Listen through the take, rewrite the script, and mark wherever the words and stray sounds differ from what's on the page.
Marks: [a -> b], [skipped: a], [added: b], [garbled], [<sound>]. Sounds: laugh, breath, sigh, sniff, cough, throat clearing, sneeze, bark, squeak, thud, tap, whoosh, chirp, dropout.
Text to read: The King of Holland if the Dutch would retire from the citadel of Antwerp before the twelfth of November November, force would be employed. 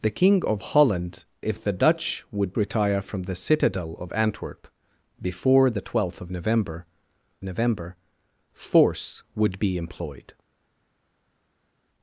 The King of Holland if the Dutch would retire from the citadel of Antwerp before the twelfth of November November, force would be employed.